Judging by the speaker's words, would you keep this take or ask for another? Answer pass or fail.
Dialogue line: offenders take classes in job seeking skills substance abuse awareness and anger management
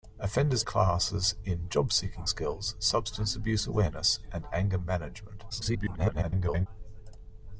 fail